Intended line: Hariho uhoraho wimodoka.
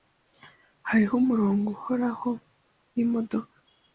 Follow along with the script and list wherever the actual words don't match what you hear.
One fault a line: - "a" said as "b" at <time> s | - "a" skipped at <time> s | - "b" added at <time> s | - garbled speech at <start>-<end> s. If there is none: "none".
- "umurongo" added at 1.2 s